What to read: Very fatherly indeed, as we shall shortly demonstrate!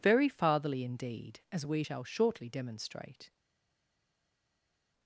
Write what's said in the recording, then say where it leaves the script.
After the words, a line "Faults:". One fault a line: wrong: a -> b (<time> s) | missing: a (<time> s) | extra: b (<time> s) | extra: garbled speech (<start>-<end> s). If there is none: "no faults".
Very fatherly indeed, as we shall shortly demonstrate!
Faults:
no faults